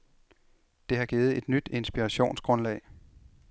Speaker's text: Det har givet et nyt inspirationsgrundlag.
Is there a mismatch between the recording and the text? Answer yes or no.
no